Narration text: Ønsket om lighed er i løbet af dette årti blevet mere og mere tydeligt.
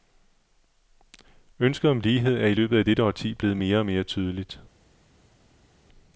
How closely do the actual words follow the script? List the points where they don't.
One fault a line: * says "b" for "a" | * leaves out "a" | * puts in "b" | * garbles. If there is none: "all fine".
all fine